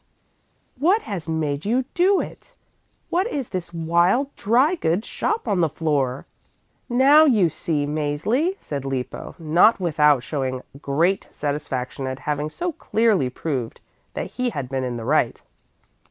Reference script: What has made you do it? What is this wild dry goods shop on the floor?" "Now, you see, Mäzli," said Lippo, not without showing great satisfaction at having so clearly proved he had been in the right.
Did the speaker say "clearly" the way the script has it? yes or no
yes